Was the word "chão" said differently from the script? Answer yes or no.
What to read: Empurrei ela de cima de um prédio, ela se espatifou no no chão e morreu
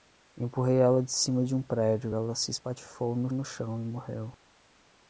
no